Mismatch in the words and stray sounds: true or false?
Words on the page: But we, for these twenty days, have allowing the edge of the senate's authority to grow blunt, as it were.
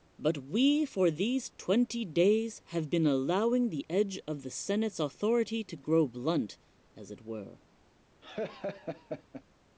true